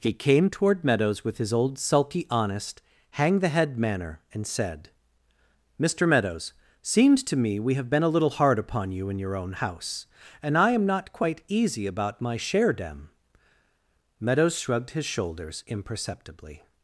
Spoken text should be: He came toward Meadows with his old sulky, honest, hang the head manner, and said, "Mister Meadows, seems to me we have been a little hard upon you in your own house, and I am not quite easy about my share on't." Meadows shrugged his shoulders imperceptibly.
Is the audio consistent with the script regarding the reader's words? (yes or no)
no